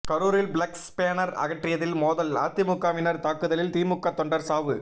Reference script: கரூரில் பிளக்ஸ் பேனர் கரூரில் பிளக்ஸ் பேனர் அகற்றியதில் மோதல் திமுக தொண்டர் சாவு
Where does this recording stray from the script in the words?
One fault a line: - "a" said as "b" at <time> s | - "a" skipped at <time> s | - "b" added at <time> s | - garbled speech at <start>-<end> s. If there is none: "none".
- "கரூரில் பிளக்ஸ் பேனர் அகற்றியதில் மோதல்" said as "அகற்றியதில் மோதல் அதிமுகவினர் தாக்குதலில்" at 1.4 s